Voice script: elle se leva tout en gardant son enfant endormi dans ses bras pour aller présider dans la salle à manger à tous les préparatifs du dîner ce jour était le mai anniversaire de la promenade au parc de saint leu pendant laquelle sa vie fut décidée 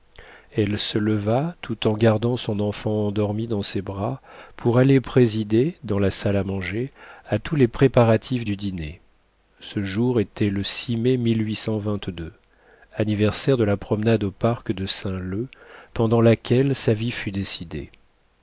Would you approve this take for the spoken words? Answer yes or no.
yes